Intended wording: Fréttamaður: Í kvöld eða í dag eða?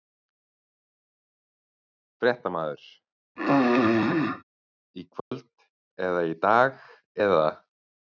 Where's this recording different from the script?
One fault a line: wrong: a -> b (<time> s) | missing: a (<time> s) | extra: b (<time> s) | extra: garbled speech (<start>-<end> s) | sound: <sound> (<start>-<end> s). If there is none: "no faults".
sound: throat clearing (3.4-4.4 s)
sound: dropout (5.2-5.3 s)